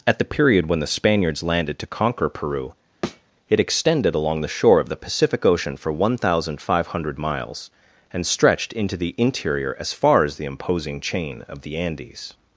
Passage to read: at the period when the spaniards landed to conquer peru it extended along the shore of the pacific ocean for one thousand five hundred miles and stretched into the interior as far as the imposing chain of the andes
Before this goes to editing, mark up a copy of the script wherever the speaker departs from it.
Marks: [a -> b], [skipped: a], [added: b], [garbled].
at the period when the spaniards landed to conquer peru it extended along the shore of the pacific ocean for one thousand five hundred miles and stretched into the interior as far as the imposing chain of the andes